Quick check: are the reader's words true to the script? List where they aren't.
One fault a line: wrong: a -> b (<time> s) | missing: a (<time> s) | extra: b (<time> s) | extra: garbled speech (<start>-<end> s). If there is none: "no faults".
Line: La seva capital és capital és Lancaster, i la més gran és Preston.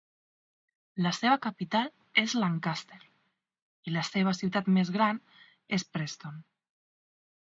missing: capital és (2.3 s)
extra: seva ciutat (4.1 s)